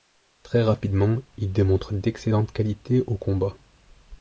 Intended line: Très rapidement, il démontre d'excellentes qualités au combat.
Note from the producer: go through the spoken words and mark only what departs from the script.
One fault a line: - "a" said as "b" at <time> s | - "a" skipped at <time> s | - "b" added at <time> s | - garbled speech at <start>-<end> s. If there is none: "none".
none